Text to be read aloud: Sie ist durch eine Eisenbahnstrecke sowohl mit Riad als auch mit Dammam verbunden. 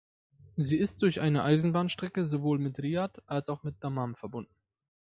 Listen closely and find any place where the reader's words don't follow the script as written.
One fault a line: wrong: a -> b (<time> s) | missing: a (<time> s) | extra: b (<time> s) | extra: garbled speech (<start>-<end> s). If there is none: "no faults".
no faults